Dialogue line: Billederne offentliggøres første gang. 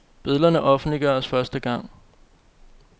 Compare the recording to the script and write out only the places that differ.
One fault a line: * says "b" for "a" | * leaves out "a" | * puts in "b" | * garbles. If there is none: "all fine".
all fine